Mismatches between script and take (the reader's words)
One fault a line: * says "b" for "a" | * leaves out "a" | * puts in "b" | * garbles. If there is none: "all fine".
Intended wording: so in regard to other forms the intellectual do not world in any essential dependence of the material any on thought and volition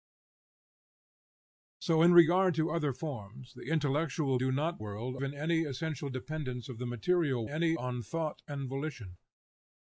all fine